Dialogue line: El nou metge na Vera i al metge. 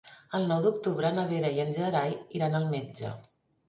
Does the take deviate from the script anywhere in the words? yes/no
yes